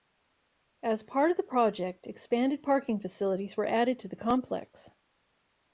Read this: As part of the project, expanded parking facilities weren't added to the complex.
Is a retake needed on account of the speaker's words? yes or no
yes